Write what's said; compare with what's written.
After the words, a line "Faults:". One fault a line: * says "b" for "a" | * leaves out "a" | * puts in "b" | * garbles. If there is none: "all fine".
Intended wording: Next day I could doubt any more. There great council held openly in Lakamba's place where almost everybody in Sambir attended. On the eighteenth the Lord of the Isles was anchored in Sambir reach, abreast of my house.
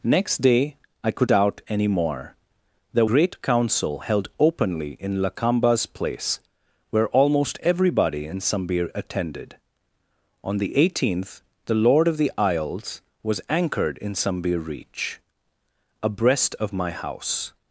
Next day I could doubt any more. There great council held openly in Lakamba's place where almost everybody in Sambir attended. On the eighteenth the Lord of the Isles was anchored in Sambir reach, abreast of my house.
Faults:
all fine